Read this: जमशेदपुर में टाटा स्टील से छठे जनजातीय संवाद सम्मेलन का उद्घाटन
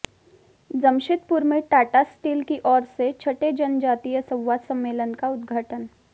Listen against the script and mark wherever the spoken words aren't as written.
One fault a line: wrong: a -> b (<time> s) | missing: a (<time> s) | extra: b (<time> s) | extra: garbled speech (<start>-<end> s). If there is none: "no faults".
extra: की ओर (2.4 s)